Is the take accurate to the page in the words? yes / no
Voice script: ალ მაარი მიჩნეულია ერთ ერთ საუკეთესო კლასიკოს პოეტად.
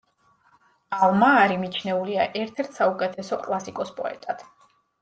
yes